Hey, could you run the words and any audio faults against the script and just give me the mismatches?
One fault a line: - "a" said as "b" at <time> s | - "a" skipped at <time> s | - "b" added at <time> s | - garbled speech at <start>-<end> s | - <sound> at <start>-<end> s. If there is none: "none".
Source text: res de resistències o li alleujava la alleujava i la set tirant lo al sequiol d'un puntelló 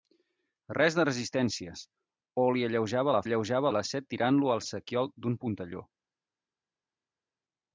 none